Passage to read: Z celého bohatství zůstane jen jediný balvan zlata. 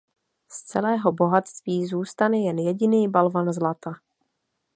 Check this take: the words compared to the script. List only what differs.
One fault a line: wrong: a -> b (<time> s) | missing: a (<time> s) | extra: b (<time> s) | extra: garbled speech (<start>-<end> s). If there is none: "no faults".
no faults